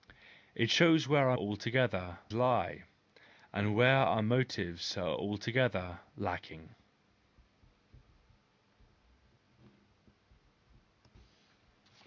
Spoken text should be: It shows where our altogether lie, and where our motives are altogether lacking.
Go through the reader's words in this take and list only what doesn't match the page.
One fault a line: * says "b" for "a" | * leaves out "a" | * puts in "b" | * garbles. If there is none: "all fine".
all fine